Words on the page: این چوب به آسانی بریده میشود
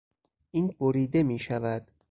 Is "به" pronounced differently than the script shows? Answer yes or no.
yes